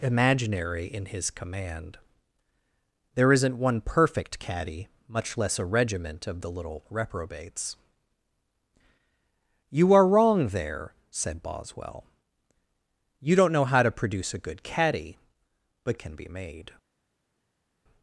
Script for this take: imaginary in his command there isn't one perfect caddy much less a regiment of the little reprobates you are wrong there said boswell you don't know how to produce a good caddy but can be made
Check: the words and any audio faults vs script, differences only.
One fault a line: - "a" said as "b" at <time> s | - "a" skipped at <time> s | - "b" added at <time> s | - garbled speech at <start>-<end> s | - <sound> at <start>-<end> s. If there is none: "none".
none